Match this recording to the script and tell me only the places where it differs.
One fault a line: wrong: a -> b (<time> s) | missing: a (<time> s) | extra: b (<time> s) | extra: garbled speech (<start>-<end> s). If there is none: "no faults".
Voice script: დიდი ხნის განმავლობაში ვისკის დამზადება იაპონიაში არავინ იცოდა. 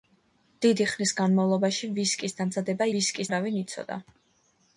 wrong: იაპონიაში -> ვისკის (2.9 s)